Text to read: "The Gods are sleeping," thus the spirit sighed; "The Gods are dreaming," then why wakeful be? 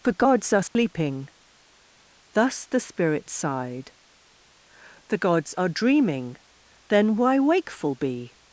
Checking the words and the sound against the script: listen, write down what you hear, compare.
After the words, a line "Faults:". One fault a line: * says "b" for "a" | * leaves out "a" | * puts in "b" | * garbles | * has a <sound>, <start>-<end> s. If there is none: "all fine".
"For Gods are sleeping," thus the spirit sighed; "The Gods are dreaming," then why wakeful be?
Faults:
* says "For" for "The"
* has a dropout, 0.7-0.8 s